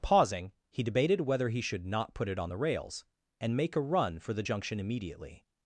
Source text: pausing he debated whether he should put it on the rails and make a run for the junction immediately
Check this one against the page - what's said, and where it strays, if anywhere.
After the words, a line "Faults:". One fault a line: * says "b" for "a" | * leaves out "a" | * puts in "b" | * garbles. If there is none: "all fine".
pausing he debated whether he should not put it on the rails and make a run for the junction immediately
Faults:
* puts in "not"